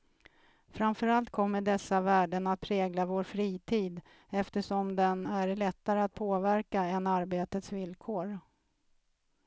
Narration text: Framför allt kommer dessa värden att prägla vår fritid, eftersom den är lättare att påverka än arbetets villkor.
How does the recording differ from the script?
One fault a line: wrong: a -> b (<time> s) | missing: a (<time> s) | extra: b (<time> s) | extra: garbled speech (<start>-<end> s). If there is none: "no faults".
no faults